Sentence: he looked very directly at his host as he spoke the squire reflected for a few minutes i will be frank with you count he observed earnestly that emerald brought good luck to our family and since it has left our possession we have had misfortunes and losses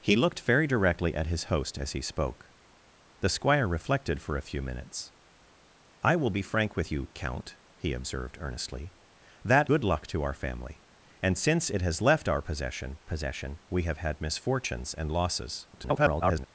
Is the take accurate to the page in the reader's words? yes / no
no